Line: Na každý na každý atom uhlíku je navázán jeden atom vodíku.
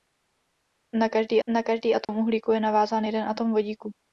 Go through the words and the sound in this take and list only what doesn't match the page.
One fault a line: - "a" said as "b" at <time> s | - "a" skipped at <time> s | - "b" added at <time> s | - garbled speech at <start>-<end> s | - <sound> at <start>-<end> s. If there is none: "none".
- dropout at 2.0-2.1 s